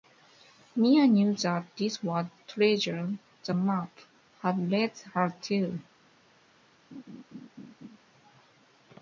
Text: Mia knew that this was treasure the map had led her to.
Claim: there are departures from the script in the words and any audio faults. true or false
true